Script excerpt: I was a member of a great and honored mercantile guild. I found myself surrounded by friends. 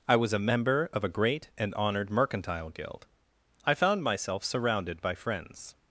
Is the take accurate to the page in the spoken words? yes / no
yes